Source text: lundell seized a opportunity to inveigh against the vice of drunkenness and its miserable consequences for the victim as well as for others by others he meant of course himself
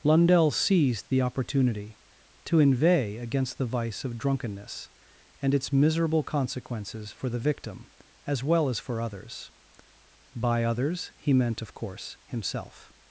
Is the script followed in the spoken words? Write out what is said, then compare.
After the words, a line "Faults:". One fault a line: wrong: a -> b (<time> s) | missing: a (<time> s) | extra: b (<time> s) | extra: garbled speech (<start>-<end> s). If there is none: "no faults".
lundell seized the opportunity to inveigh against the vice of drunkenness and its miserable consequences for the victim as well as for others by others he meant of course himself
Faults:
wrong: a -> the (1.1 s)